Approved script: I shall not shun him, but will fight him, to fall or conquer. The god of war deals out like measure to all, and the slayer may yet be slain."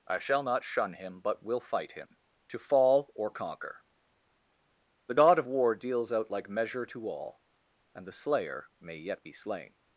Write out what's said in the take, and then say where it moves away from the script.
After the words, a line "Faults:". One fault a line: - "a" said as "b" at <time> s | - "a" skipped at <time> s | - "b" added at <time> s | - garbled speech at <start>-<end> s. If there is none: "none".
I shall not shun him, but will fight him, to fall or conquer. The god of war deals out like measure to all, and the slayer may yet be slain."
Faults:
none